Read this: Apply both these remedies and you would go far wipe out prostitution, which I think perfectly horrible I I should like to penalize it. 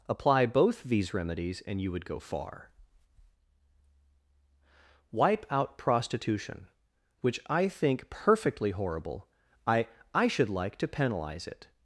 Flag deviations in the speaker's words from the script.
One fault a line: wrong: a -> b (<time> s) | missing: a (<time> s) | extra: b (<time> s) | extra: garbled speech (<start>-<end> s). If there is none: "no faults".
no faults